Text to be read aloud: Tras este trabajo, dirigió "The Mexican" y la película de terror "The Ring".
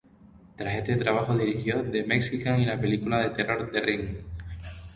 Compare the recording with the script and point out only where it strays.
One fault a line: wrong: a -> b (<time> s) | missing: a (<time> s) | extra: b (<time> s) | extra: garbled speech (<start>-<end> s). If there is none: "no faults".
no faults